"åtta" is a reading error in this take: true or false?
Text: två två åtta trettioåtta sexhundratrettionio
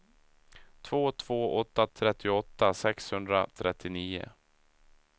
false